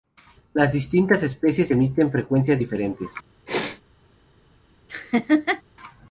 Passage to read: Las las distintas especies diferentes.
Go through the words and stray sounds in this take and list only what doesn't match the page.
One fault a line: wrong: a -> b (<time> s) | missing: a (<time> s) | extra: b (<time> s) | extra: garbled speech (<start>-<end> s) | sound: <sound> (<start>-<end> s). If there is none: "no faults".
missing: las (0.7 s)
extra: emiten frecuencias (1.7 s)
sound: sneeze (3.5-3.8 s)
sound: laugh (4.9-5.6 s)